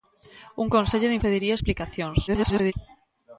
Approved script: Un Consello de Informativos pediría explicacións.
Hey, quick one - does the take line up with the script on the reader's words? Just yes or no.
no